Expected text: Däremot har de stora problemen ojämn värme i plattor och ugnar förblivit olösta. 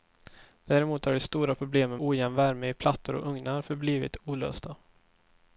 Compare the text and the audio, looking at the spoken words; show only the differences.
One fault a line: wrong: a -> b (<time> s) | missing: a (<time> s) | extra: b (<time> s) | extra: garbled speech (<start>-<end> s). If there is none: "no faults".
no faults